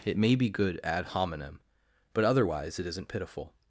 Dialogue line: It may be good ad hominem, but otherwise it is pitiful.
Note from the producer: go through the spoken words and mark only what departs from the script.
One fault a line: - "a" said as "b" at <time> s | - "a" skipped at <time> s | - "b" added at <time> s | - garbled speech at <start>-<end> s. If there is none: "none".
- "is" said as "isn't" at 2.9 s